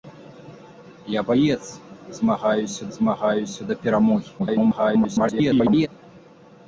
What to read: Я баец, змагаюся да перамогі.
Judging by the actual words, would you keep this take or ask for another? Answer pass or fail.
fail